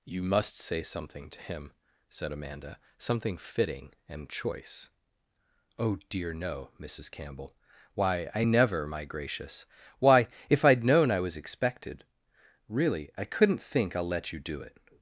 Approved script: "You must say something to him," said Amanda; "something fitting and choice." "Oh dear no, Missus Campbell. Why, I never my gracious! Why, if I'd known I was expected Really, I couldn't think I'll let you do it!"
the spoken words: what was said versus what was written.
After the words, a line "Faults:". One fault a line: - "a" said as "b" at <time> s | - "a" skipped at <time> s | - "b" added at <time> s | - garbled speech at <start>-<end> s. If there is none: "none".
"You must say something to him," said Amanda; "something fitting and choice." "Oh dear no, Missus Campbell. Why, I never my gracious! Why, if I'd known I was expected Really, I couldn't think I'll let you do it!"
Faults:
none